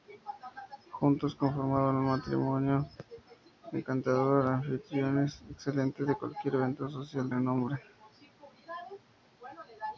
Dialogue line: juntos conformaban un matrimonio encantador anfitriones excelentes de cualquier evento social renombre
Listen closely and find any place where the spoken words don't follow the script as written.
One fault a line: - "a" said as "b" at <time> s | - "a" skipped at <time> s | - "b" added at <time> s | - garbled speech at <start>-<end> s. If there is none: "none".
none